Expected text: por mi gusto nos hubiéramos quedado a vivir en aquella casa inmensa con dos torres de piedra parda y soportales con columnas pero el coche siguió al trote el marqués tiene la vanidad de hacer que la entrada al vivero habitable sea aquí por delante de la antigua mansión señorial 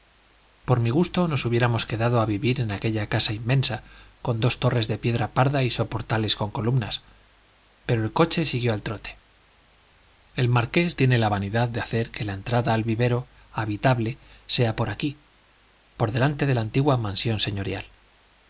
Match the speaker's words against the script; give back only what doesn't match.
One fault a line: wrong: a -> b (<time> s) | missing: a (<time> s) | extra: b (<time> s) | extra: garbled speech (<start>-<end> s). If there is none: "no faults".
extra: por (14.8 s)